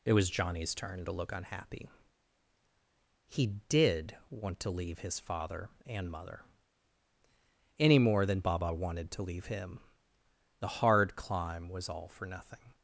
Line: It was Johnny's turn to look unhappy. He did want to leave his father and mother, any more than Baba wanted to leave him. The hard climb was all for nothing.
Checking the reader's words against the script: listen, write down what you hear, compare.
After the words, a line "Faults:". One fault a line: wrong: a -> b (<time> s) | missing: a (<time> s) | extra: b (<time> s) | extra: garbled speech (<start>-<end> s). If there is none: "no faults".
It was Johnny's turn to look unhappy. He did want to leave his father and mother, any more than Baba wanted to leave him. The hard climb was all for nothing.
Faults:
no faults